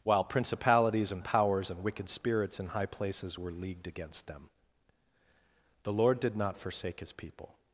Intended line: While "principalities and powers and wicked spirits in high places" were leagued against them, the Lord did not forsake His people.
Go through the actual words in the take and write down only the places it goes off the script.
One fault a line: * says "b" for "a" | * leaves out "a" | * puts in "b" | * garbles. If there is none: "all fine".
all fine